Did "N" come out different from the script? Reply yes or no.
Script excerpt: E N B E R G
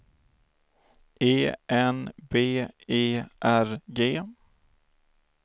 no